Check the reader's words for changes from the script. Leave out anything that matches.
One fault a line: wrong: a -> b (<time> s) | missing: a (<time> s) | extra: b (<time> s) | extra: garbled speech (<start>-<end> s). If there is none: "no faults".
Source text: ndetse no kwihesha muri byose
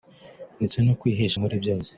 no faults